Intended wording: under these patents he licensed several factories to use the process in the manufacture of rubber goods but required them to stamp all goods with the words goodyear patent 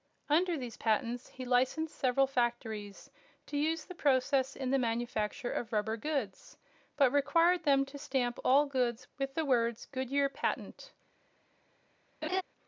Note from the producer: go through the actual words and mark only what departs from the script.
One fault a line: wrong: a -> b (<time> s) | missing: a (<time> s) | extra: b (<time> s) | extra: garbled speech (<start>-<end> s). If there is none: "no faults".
no faults